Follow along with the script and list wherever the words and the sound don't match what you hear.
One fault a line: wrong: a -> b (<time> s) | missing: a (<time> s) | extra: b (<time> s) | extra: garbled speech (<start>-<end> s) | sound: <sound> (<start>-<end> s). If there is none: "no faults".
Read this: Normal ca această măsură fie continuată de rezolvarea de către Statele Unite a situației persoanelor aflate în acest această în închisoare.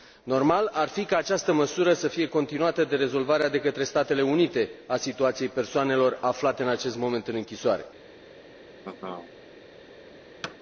extra: ar fi (0.7 s)
extra: să (1.9 s)
wrong: această -> moment (7.0 s)
sound: laugh (8.8-9.3 s)
sound: thud (10.4-10.6 s)